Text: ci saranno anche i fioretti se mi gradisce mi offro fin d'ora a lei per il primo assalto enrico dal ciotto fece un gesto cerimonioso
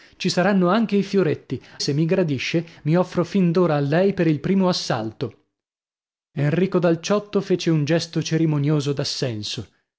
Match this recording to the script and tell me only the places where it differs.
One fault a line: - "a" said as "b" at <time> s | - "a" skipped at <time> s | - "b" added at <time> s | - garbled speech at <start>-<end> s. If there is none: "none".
none